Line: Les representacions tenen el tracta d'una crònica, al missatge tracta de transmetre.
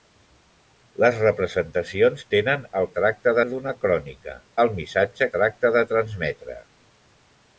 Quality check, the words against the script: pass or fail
pass